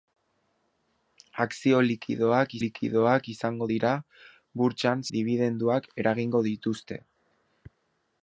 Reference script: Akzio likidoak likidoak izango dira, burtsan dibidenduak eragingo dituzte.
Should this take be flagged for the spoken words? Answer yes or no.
no